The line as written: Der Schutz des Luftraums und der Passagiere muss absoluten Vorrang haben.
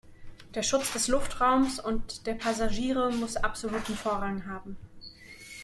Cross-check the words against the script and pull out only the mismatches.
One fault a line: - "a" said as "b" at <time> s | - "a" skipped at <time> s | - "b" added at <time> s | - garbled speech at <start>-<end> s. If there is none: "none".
none